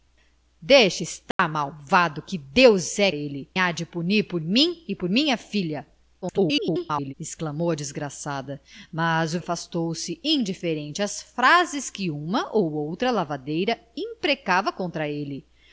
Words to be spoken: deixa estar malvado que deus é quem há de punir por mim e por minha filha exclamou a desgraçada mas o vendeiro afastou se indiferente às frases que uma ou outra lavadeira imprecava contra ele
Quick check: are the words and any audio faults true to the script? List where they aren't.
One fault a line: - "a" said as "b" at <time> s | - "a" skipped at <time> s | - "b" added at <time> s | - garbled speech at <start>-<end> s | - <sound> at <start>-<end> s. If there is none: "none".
- dropout at 1.3-1.4 s
- "quem" said as "ele" at 3.1 s
- garbled speech at 6.2-7.1 s
- "vendeiro" skipped at 9.4 s